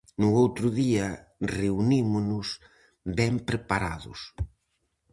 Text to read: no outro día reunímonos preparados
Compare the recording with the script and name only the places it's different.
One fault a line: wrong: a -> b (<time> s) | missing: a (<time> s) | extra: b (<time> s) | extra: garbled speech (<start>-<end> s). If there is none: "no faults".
extra: ben (3.2 s)